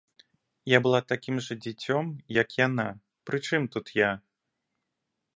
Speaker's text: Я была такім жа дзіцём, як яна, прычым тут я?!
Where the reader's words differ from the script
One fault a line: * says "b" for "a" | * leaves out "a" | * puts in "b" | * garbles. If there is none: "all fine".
all fine